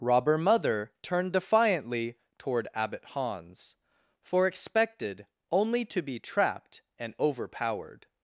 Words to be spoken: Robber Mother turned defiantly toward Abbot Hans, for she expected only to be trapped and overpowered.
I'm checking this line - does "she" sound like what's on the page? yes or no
no